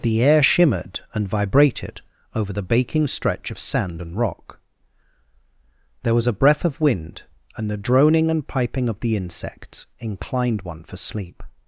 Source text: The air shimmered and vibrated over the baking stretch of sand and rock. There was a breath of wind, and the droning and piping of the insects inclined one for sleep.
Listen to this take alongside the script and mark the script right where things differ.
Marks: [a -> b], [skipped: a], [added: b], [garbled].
The air shimmered and vibrated over the baking stretch of sand and rock. There was a breath of wind, and the droning and piping of the insects inclined one for sleep.